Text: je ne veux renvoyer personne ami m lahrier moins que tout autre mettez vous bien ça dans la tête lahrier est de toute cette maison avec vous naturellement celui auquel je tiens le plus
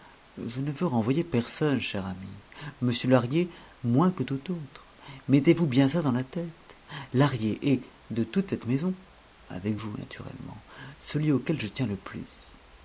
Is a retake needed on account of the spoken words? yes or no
yes